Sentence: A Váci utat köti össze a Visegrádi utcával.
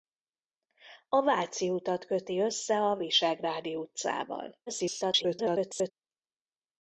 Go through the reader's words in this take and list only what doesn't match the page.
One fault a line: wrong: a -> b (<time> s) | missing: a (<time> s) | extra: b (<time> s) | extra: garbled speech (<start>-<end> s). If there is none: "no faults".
extra: garbled speech (4.7-5.9 s)